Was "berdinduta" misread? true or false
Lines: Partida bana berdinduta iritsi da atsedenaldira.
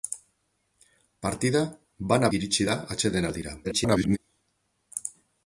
true